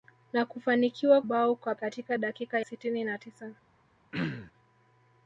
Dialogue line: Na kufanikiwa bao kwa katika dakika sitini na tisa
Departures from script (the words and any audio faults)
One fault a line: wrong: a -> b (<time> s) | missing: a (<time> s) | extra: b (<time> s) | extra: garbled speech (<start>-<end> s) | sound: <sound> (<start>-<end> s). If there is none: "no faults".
sound: throat clearing (4.1-4.5 s)